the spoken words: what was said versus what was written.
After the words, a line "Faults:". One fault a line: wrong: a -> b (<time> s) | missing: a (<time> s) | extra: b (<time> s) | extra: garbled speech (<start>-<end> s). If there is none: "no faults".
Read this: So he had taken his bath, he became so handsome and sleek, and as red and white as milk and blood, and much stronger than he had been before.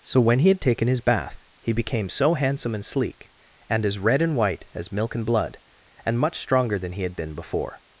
So when he had taken his bath, he became so handsome and sleek, and as red and white as milk and blood, and much stronger than he had been before.
Faults:
extra: when (0.2 s)